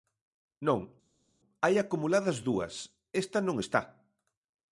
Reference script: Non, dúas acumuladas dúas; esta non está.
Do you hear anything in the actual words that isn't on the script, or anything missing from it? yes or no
yes